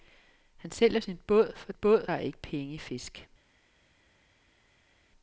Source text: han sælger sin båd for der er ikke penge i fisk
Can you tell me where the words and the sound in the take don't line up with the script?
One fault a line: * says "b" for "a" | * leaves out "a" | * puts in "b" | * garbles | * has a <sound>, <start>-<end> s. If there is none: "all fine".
* says "båd" for "der"